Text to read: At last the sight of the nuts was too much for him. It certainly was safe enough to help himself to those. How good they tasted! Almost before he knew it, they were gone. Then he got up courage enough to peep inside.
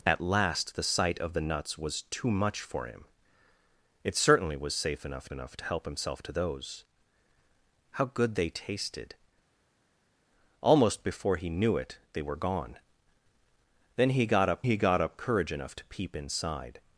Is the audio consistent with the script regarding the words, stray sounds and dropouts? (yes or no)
no